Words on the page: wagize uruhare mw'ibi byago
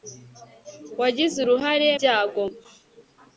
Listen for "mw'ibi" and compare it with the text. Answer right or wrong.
wrong